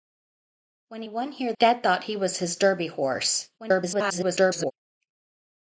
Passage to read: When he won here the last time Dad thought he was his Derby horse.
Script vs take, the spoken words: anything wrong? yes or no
yes